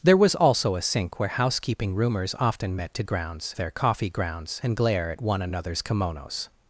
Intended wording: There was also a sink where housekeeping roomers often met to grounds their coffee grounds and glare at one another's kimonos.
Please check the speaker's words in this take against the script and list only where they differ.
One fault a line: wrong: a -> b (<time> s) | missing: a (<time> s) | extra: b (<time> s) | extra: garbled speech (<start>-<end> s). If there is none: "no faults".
no faults